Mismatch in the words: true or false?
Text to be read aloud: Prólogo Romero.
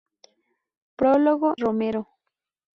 false